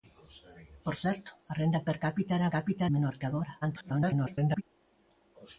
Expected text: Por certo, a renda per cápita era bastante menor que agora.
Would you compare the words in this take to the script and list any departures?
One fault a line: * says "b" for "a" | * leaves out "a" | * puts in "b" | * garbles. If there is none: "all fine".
* says "cápita" for "bastante"
* garbles